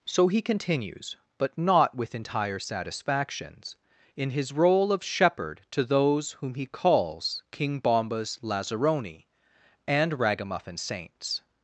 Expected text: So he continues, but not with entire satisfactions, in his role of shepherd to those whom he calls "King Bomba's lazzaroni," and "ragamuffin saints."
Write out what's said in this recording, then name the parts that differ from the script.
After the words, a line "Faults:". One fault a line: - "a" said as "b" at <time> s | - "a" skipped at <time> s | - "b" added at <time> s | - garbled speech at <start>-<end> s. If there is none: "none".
So he continues, but not with entire satisfactions, in his role of shepherd to those whom he calls "King Bomba's lazzaroni," and "ragamuffin saints."
Faults:
none